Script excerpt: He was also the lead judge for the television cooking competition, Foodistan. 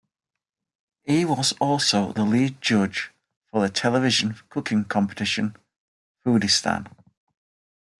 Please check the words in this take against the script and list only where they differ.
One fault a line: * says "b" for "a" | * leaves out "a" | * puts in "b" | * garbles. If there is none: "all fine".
all fine